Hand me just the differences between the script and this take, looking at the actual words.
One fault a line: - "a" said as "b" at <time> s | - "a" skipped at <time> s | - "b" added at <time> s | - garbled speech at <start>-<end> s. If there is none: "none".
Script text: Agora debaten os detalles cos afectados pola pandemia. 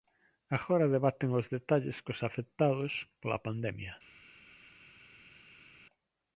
none